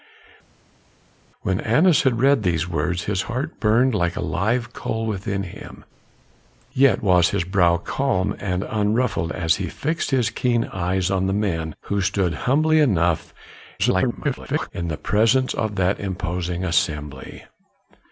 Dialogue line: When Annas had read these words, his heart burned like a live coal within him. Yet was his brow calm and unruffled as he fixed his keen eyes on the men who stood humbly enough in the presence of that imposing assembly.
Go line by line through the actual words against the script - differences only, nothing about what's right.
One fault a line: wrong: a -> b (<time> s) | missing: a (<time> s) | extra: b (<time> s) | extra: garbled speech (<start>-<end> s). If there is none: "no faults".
extra: garbled speech (13.8-14.7 s)